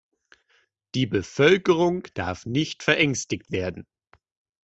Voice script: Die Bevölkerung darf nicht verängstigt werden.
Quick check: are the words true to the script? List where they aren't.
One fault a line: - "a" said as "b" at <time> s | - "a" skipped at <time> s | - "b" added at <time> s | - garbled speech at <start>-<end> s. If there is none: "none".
none